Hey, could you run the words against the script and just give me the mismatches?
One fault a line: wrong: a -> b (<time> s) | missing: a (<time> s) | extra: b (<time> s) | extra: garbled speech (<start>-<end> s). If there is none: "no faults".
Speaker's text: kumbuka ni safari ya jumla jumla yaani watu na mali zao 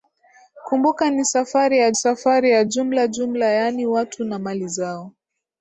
extra: safari ya (1.9 s)